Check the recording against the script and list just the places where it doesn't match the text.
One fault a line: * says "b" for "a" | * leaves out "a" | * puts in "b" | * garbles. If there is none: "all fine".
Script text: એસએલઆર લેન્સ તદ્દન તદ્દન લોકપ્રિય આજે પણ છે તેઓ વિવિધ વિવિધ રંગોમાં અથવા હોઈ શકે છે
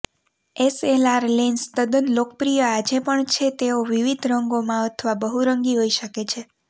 * leaves out "તદ્દન"
* leaves out "વિવિધ"
* puts in "બહુરંગી"